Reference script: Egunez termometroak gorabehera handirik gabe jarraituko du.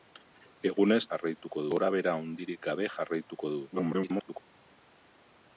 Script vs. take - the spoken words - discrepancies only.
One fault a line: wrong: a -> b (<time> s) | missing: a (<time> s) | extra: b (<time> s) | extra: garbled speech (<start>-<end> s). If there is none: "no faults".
wrong: termometroak -> jarraituko (1.1 s)
extra: garbled speech (3.7-4.4 s)